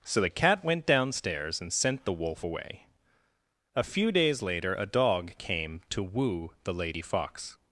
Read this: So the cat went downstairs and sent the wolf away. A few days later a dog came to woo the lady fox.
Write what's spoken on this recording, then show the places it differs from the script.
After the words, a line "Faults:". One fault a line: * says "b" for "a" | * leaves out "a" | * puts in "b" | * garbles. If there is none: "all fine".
So the cat went downstairs and sent the wolf away. A few days later a dog came to woo the lady fox.
Faults:
all fine